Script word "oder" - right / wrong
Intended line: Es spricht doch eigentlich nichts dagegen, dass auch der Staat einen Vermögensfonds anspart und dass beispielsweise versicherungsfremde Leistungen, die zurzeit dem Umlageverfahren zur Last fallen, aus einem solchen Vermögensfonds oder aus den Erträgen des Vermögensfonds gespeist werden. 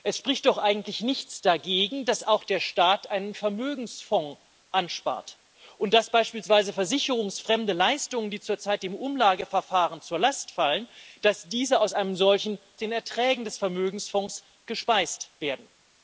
wrong